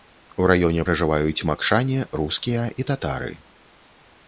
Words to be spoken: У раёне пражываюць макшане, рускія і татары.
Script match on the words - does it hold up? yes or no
yes